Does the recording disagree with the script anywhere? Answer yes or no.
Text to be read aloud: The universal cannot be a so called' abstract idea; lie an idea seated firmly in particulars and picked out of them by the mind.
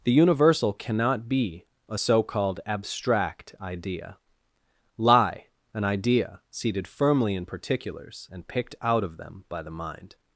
no